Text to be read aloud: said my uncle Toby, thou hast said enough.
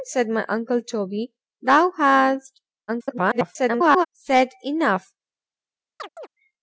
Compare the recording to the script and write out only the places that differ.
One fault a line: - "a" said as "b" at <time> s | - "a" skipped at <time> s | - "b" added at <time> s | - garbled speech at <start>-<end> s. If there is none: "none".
- garbled speech at 2.9-4.1 s